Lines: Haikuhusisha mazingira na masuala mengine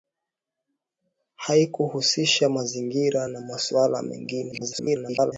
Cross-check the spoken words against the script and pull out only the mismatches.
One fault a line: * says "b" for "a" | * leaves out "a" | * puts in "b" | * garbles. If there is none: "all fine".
* garbles